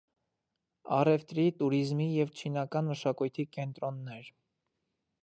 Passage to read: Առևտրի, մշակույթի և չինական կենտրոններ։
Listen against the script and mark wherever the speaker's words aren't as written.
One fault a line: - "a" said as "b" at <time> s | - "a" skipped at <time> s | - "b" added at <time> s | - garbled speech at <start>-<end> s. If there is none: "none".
- "մշակույթի" said as "տուրիզմի" at 1.6 s
- "մշակույթի" added at 2.9 s